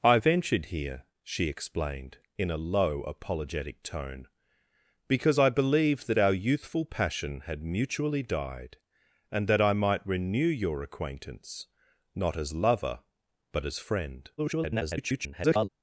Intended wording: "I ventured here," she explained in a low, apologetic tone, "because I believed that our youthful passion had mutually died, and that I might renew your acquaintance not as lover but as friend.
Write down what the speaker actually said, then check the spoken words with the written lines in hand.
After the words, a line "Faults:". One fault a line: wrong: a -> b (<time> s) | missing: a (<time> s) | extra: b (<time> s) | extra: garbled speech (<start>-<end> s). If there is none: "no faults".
"I ventured here," she explained in a low, apologetic tone, "because I believed that our youthful passion had mutually died, and that I might renew your acquaintance not as lover but as friend. [garbled]
Faults:
extra: garbled speech (14.4-15.7 s)